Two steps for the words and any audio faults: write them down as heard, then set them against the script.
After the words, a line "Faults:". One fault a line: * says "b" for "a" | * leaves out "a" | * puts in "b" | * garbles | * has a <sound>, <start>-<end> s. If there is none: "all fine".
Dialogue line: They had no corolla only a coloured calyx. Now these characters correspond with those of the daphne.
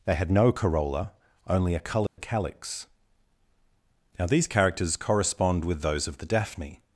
They had no corolla only a coloured calyx. Now these characters correspond with those of the daphne.
Faults:
* has a dropout, 2.1-2.2 s